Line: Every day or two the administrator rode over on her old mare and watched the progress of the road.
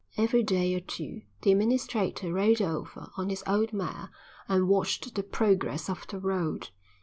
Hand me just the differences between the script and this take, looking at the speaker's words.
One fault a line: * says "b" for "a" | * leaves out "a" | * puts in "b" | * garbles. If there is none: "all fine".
* says "his" for "her"